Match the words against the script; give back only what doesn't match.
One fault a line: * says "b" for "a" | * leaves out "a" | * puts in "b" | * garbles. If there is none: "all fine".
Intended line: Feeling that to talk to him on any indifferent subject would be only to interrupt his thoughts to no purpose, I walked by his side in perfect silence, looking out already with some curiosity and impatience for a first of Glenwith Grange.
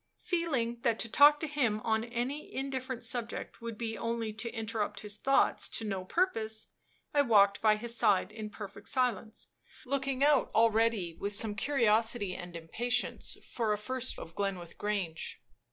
all fine